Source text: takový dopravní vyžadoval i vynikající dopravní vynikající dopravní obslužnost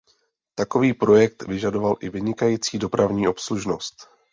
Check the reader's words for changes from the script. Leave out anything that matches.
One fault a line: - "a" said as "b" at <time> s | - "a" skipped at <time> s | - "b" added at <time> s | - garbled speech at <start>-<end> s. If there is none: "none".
- "dopravní" said as "projekt" at 0.9 s
- "vynikající dopravní" skipped at 3.3 s